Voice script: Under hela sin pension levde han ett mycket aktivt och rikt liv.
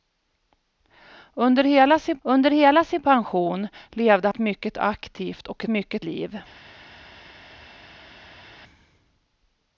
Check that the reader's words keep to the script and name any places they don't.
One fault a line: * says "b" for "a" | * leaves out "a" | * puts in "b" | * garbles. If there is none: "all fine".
* puts in "under hela sin"
* leaves out "han"
* says "mycket" for "rikt"